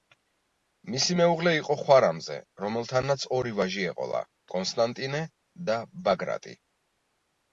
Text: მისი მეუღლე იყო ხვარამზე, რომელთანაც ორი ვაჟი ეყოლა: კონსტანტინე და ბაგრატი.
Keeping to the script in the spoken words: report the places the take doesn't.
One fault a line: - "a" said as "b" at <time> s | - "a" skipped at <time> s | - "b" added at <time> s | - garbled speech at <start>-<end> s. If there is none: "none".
none